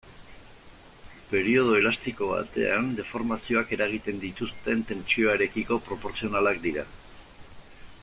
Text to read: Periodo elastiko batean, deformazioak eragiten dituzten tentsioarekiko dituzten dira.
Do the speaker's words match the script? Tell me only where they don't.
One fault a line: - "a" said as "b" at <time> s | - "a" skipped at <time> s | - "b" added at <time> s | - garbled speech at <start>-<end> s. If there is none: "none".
- "dituzten" said as "proportzionalak" at 5.9 s